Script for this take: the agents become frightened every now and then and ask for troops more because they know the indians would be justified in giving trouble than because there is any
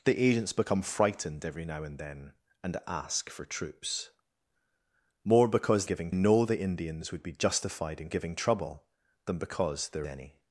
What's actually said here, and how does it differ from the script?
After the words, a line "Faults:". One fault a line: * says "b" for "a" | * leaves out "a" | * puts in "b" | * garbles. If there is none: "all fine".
the agents become frightened every now and then and ask for troops more because giving know the indians would be justified in giving trouble than because there any
Faults:
* says "giving" for "they"
* leaves out "is"